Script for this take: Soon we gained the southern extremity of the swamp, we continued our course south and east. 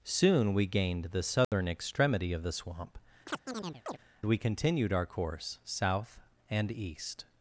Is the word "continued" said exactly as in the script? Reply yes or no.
yes